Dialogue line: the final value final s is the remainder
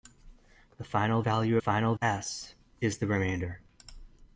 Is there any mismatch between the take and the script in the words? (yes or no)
no